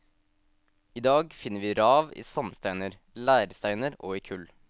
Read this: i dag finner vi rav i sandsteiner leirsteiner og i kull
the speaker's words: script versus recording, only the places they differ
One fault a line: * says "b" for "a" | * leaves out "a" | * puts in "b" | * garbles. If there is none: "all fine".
all fine